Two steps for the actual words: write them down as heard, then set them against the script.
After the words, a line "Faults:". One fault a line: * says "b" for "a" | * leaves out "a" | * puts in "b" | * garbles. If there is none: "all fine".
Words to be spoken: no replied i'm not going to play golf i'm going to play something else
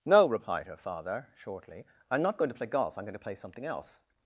no replied her father shortly i'm not going to play golf i'm going to play something else
Faults:
* puts in "her father shortly"